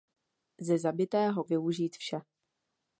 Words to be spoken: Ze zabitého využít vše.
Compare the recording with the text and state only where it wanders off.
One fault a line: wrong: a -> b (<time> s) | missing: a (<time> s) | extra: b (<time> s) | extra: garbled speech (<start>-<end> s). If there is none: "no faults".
no faults